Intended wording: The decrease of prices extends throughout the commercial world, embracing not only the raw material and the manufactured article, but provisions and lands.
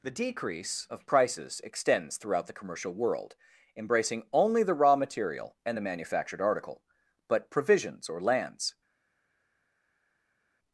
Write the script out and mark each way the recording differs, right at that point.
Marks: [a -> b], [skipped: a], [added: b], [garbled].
The decrease of prices extends throughout the commercial world, embracing [skipped: not] only the raw material and the manufactured article, but provisions [and -> or] lands.